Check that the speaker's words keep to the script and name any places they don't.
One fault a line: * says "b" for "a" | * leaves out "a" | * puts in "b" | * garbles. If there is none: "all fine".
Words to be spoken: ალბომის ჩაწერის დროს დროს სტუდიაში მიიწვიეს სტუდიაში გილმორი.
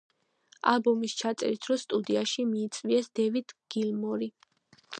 * leaves out "დროს"
* says "დევიდ" for "სტუდიაში"